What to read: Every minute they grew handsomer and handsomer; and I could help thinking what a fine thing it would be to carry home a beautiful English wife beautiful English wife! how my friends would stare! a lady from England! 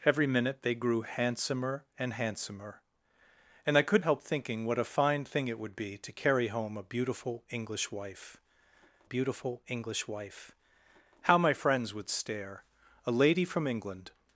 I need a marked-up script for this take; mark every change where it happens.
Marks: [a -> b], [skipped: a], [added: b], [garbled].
Every minute they grew handsomer and handsomer; and I could help thinking what a fine thing it would be to carry home a beautiful English wife beautiful English wife! how my friends would stare! a lady from England!